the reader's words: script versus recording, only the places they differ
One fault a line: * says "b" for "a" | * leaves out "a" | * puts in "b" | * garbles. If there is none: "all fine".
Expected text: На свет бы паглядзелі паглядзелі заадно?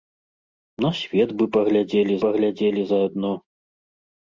all fine